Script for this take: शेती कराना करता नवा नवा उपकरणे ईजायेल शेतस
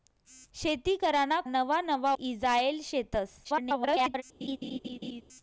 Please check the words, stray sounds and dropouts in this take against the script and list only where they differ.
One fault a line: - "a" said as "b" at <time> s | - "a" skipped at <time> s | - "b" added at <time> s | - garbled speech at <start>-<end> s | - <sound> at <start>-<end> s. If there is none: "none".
- "करता" skipped at 1.4 s
- "उपकरणे" skipped at 2.1 s
- garbled speech at 3.4-4.2 s
- laugh at 4.4-5.2 s